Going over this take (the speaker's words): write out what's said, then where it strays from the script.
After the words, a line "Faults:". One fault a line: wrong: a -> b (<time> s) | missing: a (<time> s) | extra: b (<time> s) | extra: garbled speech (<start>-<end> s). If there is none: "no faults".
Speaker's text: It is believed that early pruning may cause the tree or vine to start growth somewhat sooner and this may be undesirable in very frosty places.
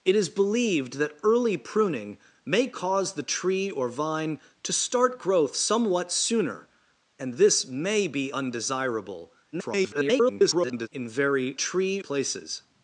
It is believed that early pruning may cause the tree or vine to start growth somewhat sooner and this may be undesirable [garbled] in very tree places.
Faults:
extra: garbled speech (9.5-10.9 s)
wrong: frosty -> tree (11.5 s)